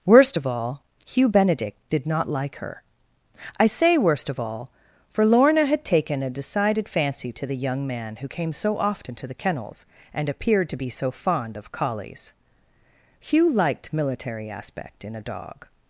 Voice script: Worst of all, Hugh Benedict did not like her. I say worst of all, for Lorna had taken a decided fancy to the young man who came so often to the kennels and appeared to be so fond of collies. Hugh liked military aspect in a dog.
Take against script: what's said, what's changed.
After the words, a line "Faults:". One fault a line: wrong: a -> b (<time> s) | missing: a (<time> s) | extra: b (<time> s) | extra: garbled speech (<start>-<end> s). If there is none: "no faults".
Worst of all, Hugh Benedict did not like her. I say worst of all, for Lorna had taken a decided fancy to the young man who came so often to the kennels and appeared to be so fond of collies. Hugh liked military aspect in a dog.
Faults:
no faults